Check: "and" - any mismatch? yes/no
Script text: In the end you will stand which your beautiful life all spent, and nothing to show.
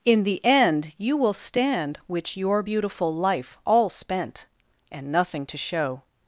no